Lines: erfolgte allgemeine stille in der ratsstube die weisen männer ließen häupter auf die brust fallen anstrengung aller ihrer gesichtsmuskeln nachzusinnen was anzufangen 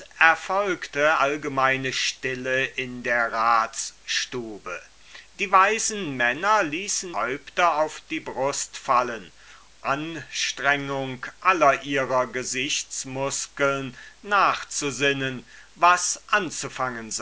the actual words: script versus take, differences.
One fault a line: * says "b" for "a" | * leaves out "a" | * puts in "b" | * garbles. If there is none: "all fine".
all fine